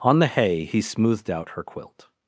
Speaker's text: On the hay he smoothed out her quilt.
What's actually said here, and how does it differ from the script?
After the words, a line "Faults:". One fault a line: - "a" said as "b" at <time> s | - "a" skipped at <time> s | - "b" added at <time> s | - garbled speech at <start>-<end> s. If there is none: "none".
On the hay he smoothed out her quilt.
Faults:
none